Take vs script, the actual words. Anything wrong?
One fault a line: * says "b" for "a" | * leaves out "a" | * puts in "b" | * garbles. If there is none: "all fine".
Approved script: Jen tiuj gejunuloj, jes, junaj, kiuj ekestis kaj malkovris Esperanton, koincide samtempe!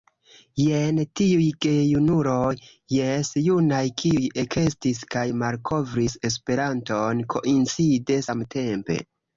all fine